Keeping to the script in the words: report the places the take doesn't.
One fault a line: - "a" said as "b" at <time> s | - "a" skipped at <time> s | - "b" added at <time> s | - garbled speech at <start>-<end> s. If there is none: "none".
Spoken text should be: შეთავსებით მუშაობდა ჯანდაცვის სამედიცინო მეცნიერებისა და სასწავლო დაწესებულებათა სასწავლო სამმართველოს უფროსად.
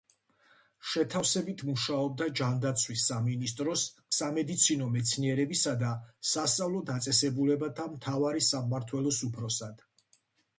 - "სამინისტროს" added at 3.1 s
- "სასწავლო" said as "მთავარი" at 8.0 s